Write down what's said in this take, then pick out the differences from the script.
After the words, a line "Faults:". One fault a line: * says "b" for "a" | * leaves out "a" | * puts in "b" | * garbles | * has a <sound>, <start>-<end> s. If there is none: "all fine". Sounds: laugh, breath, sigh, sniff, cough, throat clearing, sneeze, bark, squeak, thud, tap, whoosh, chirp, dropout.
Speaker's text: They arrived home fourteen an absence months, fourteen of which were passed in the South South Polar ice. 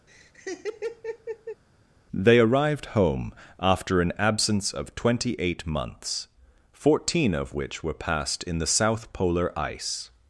They arrived home after an absence of twenty eight months, fourteen of which were passed in the South Polar ice.
Faults:
* has a laugh, 0.1-1.6 s
* says "after" for "fourteen"
* puts in "of twenty eight"
* leaves out "South"